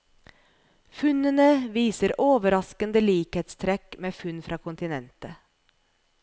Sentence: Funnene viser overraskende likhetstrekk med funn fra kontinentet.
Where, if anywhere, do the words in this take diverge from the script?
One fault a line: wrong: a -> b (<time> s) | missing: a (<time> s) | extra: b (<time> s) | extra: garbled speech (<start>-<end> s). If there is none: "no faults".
no faults